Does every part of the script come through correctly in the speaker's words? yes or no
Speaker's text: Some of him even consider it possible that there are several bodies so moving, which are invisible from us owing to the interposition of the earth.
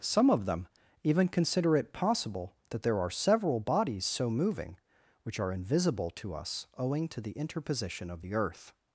no